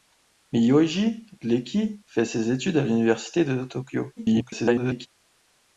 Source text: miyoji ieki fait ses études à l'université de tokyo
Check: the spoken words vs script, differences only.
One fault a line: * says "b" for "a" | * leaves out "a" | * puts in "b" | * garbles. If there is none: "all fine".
* garbles